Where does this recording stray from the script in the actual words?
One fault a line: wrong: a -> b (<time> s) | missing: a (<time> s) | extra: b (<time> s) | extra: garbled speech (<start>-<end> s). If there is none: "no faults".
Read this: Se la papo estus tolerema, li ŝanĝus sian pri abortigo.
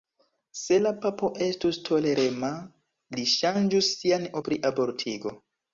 no faults